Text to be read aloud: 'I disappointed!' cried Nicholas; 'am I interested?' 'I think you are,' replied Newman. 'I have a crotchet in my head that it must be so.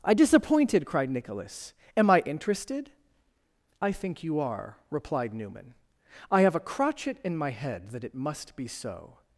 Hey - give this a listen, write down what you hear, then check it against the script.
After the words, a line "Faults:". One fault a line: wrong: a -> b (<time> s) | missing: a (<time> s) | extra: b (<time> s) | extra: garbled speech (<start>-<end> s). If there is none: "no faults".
'I disappointed!' cried Nicholas; 'am I interested?' 'I think you are,' replied Newman. 'I have a crotchet in my head that it must be so.
Faults:
no faults